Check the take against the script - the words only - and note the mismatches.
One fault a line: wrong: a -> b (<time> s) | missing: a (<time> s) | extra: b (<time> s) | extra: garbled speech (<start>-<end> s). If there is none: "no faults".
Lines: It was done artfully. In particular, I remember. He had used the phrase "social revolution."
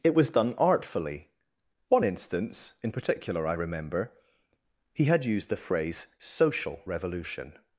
extra: One instance (1.9 s)